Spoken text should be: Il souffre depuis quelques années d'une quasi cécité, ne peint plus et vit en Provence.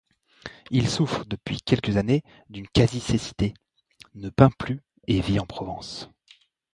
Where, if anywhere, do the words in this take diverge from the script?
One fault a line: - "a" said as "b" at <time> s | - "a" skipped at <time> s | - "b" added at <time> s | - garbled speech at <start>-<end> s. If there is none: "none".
none